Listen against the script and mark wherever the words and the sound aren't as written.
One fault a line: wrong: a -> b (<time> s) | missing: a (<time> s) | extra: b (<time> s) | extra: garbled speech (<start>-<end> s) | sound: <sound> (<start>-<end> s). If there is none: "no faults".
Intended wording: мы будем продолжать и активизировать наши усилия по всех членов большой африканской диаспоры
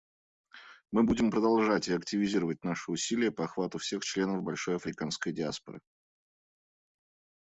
extra: охвату (3.4 s)